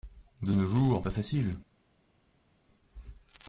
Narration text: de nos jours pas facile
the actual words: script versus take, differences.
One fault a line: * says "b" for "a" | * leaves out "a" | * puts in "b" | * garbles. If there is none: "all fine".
all fine